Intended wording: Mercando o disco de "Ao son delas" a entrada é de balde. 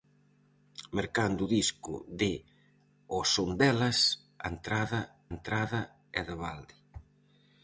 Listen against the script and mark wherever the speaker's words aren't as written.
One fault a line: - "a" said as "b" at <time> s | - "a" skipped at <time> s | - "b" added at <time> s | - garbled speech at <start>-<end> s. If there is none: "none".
- "entrada" added at 5.4 s